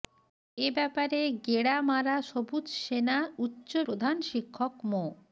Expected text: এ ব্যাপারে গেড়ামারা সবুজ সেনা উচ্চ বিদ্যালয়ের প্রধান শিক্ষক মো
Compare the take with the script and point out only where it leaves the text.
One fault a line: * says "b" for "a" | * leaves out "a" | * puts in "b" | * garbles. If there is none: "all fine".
* leaves out "বিদ্যালয়ের"